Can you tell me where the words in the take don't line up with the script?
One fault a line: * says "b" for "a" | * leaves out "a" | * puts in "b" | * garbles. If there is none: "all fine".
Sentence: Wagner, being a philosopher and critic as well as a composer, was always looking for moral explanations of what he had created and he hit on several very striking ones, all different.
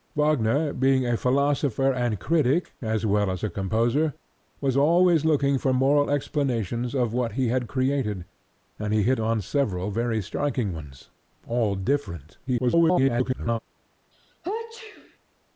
* garbles